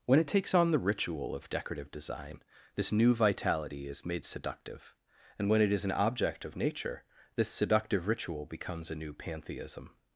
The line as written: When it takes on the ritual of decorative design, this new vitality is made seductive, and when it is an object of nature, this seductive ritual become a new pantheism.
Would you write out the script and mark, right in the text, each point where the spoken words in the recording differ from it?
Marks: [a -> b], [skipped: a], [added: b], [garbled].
When it takes on the ritual of decorative design, this new vitality is made seductive, and when it is an object of nature, this seductive ritual [become -> becomes] a new pantheism.